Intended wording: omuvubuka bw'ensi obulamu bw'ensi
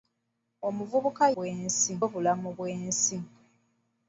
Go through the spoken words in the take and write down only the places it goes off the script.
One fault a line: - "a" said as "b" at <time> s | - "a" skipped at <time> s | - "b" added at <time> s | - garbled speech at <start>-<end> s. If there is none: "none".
none